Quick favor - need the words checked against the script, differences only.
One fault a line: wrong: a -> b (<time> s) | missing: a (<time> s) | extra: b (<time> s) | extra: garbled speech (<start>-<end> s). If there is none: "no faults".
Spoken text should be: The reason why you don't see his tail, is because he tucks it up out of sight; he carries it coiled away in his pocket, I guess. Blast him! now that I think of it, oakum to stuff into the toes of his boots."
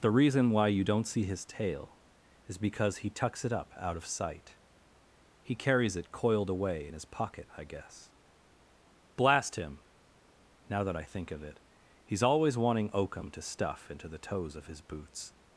extra: he's always wanting (12.1 s)